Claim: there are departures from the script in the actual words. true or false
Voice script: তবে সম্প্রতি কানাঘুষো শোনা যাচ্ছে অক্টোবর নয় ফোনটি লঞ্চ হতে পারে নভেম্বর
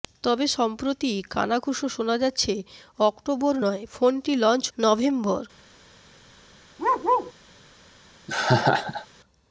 true